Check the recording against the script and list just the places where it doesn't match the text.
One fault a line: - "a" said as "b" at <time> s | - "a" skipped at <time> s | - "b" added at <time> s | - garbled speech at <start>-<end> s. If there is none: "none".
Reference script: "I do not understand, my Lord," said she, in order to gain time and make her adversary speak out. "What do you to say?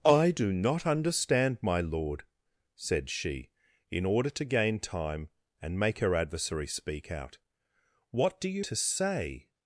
none